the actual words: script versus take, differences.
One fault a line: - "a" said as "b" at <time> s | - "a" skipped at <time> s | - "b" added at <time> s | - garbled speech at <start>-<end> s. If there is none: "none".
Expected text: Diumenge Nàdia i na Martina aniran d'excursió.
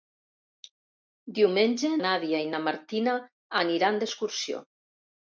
none